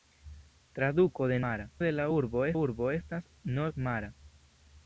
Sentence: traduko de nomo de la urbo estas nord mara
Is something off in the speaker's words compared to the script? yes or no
yes